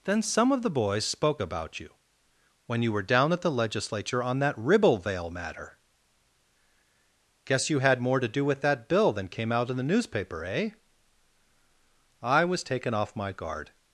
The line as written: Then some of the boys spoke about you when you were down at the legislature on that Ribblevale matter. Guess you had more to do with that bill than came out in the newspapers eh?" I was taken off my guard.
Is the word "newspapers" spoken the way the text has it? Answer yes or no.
no